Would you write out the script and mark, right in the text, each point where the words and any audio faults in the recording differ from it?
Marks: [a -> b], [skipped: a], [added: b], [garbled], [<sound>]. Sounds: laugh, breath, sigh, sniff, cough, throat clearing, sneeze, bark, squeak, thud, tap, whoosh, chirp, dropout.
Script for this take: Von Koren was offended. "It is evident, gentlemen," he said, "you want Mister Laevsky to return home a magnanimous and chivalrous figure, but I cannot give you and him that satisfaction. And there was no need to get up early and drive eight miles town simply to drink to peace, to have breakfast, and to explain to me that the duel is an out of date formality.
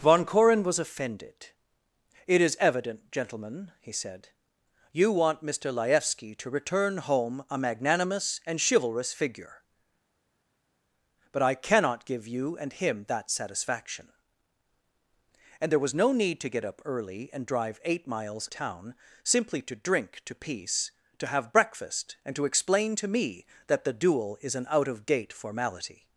Von Koren was offended. "It is evident, gentlemen," he said, "you want Mister Laevsky to return home a magnanimous and chivalrous figure, but I cannot give you and him that satisfaction. And there was no need to get up early and drive eight miles town simply to drink to peace, to have breakfast, and to explain to me that the duel is an out of date formality.